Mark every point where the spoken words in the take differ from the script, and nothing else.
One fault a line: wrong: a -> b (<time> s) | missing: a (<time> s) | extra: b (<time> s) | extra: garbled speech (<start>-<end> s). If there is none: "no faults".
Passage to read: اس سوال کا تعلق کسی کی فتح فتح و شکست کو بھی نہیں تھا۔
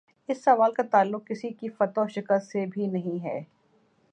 missing: فتح (2.0 s)
wrong: کو -> سے (2.5 s)
wrong: تھا -> ہے (3.2 s)